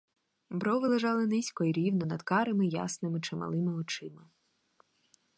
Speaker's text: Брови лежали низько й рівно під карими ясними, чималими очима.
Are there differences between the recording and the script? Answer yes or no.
yes